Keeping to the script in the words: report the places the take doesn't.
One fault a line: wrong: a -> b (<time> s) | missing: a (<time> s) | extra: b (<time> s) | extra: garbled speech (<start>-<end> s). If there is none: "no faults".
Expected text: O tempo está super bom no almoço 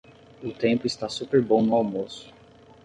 no faults